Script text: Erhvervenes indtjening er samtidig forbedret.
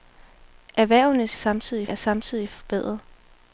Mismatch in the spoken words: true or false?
true